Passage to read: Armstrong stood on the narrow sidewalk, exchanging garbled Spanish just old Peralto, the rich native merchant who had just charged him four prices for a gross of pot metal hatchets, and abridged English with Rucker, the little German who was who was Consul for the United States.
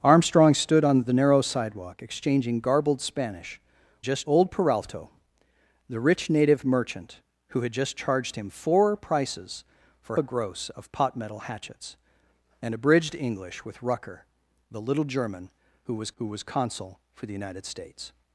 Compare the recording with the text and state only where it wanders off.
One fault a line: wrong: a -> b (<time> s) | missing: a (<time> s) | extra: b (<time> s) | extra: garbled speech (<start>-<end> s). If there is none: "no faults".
no faults